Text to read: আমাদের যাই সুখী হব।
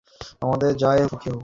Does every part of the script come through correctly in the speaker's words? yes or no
yes